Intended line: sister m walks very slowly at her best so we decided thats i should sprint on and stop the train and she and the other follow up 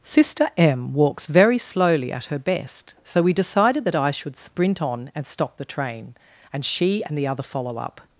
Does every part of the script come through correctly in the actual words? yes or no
no